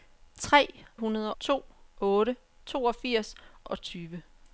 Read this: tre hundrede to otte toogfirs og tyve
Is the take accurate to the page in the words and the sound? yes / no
yes